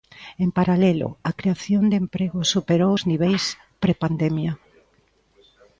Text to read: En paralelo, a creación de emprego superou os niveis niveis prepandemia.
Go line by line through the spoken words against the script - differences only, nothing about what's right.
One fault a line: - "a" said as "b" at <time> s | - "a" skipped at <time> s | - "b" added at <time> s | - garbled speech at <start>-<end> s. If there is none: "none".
- "niveis" skipped at 3.4 s